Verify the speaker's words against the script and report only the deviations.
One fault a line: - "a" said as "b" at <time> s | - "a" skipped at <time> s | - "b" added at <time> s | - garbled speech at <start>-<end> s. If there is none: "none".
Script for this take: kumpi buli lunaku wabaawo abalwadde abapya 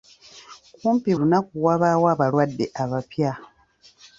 - "buli" skipped at 1.1 s